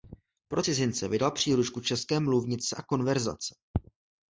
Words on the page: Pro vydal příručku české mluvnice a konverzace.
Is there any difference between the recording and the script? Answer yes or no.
yes